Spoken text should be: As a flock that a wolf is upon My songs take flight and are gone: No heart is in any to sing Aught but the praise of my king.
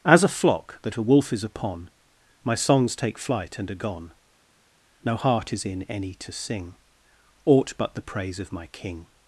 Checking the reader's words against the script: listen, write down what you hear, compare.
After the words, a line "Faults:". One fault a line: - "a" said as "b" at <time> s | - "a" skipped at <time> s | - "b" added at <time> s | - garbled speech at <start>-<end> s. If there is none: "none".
As a flock that a wolf is upon My songs take flight and are gone: No heart is in any to sing Aught but the praise of my king.
Faults:
none